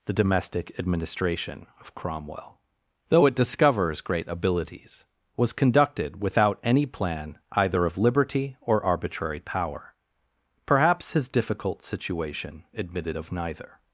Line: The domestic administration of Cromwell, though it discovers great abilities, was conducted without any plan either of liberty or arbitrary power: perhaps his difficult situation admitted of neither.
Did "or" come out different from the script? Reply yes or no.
no